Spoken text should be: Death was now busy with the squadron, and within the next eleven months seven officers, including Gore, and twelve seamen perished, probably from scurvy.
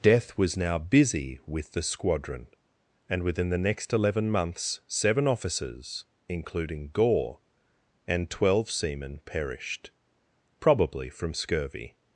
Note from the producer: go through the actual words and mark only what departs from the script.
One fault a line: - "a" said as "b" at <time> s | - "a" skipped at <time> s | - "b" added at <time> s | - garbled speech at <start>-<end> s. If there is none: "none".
none